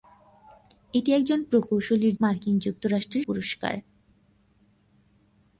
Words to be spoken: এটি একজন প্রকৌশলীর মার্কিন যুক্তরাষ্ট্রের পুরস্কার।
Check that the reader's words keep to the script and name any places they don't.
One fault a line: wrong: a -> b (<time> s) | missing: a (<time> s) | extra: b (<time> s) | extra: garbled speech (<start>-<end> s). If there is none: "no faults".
no faults